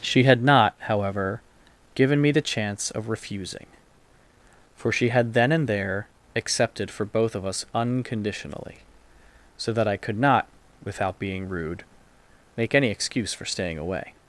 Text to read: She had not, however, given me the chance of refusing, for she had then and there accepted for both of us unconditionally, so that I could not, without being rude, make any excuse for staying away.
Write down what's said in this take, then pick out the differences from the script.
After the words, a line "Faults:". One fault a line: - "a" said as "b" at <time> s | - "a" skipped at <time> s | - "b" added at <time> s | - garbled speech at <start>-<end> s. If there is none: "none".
She had not, however, given me the chance of refusing, for she had then and there accepted for both of us unconditionally, so that I could not, without being rude, make any excuse for staying away.
Faults:
none